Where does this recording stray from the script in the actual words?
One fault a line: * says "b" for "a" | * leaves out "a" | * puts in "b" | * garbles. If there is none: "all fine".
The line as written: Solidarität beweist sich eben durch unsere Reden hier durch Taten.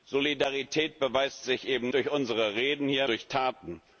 all fine